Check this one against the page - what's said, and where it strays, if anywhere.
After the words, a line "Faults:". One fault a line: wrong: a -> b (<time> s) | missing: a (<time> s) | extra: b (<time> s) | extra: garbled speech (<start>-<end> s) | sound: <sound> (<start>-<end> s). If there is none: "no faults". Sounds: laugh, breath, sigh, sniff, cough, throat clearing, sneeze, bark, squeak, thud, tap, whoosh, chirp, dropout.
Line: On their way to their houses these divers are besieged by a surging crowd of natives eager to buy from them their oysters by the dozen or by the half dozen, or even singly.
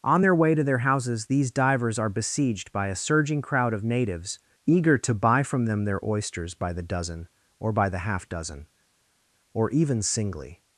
On their way to their houses these divers are besieged by a surging crowd of natives eager to buy from them their oysters by the dozen or by the half dozen, or even singly.
Faults:
no faults